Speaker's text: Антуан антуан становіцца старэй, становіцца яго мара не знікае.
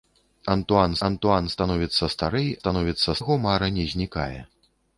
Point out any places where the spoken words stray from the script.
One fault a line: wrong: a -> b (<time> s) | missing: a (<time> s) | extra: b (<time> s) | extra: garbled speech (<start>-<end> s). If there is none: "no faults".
no faults